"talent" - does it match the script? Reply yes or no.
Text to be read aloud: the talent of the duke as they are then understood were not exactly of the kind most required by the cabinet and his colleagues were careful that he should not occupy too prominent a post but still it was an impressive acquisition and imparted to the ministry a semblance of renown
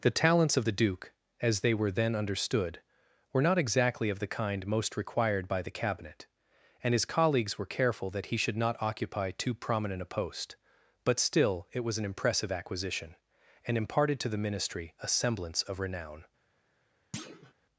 no